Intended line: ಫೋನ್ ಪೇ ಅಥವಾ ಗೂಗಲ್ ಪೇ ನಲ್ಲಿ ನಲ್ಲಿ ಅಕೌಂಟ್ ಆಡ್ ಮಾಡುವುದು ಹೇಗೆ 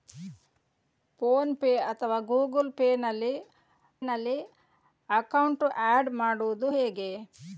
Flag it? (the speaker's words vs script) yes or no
no